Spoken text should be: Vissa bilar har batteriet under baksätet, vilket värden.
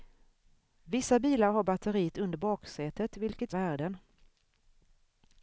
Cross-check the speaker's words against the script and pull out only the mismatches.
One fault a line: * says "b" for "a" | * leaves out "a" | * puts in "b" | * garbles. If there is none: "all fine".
all fine